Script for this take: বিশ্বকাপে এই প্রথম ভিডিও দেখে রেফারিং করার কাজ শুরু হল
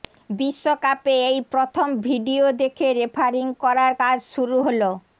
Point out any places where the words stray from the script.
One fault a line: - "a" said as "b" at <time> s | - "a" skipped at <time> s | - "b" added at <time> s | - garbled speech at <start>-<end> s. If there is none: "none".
none